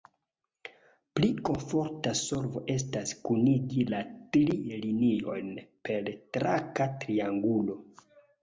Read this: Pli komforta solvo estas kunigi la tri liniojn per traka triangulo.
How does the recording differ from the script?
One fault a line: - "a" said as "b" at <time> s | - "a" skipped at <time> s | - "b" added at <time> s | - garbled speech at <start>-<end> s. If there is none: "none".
none